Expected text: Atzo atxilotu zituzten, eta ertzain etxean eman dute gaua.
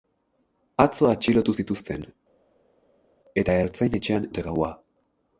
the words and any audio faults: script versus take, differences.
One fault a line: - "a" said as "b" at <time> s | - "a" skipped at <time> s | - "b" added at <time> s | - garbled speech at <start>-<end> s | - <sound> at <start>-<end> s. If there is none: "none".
- "eman" skipped at 4.3 s